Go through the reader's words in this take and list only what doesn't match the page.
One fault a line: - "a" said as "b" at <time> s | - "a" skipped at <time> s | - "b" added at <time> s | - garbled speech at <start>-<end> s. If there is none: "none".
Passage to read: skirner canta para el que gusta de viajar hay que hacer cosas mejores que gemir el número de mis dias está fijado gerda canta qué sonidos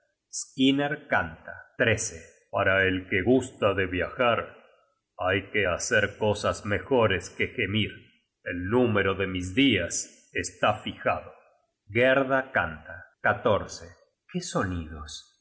none